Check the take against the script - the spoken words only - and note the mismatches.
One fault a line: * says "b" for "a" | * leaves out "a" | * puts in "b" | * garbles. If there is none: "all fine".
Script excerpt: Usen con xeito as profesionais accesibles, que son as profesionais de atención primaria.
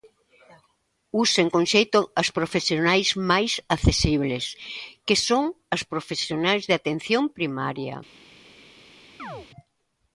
* puts in "máis"